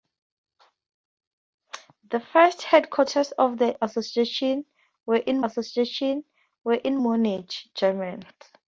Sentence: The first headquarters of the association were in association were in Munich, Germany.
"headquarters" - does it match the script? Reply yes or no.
yes